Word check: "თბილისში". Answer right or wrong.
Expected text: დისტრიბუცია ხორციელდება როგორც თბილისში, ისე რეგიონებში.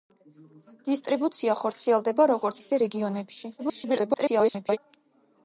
wrong